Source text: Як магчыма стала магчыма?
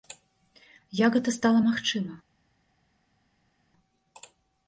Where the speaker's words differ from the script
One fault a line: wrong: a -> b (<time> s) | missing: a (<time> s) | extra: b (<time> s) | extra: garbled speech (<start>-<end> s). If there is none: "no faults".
wrong: магчыма -> гэта (1.2 s)